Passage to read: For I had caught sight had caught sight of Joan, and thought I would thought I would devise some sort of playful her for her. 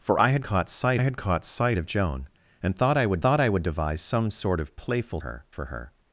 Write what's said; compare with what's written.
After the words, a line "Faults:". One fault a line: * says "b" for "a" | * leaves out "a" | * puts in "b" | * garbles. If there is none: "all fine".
For I had caught sight had caught sight of Joan, and thought I would thought I would devise some sort of playful her for her.
Faults:
all fine